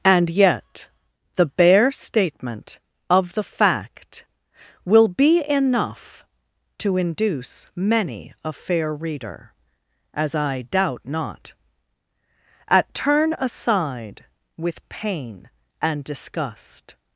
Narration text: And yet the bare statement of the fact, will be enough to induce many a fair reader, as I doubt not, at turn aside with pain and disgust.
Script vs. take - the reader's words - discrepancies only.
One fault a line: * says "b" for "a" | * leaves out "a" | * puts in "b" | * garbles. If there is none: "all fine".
all fine